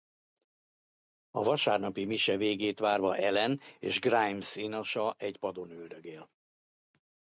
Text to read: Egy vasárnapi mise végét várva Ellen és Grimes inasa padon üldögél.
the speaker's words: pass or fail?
fail